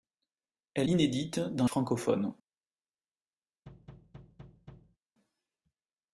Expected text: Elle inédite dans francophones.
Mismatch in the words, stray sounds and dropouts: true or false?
true